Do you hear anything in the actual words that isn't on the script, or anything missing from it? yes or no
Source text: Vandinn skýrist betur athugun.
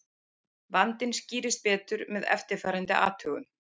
yes